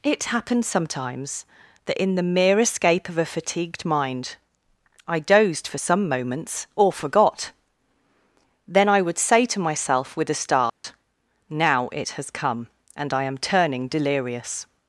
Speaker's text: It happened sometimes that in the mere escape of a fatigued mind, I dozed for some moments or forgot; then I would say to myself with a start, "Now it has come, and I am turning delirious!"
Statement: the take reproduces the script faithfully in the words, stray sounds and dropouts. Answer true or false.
false